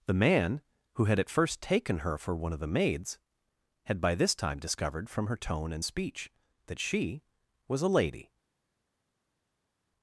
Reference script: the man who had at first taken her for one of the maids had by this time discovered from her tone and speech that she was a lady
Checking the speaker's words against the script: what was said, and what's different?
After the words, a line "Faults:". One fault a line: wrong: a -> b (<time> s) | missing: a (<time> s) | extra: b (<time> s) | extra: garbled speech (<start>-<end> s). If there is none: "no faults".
the man who had at first taken her for one of the maids had by this time discovered from her tone and speech that she was a lady
Faults:
no faults